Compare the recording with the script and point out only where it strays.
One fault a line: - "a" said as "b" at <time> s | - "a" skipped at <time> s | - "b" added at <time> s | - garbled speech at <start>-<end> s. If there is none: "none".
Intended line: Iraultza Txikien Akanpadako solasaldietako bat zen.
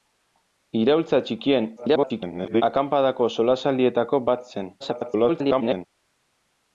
- garbled speech at 1.8-2.6 s
- garbled speech at 4.8-5.9 s